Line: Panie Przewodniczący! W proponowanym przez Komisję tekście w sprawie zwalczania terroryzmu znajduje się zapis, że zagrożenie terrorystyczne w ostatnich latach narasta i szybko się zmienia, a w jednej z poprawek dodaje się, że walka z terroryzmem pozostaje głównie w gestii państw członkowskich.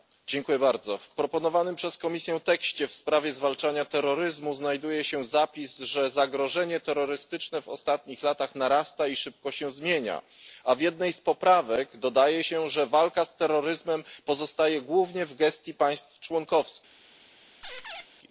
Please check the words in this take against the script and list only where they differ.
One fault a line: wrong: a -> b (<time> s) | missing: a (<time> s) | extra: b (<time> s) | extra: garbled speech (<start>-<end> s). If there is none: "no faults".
no faults